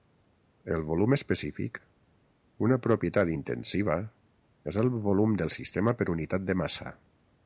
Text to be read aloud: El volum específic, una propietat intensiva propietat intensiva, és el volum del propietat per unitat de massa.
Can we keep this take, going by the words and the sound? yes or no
no